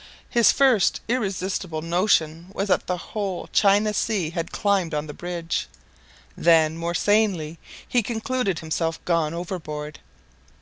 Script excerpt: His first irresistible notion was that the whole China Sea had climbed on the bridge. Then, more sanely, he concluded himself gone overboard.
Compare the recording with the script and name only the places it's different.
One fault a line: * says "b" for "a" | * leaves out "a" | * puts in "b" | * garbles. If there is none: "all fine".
all fine